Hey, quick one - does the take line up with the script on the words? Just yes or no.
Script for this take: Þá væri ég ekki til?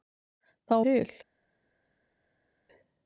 no